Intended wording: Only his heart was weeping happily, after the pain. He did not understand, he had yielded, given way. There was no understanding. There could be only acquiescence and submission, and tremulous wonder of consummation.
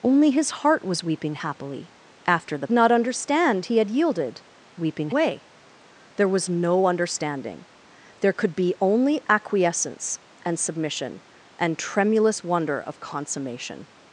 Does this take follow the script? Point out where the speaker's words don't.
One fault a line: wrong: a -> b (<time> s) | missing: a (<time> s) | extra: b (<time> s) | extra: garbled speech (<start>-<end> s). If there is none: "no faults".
missing: pain He did (2.7 s)
wrong: given -> weeping (4.8 s)